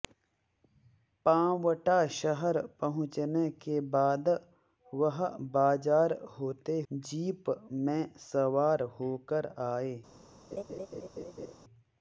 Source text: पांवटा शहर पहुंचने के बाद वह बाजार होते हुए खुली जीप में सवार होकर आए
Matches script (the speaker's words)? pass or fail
fail